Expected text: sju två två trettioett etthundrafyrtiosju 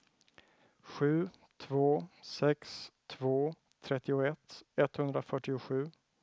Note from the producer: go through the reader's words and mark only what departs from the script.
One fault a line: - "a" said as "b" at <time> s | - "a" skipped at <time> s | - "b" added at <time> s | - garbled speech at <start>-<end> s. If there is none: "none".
- "sex" added at 2.2 s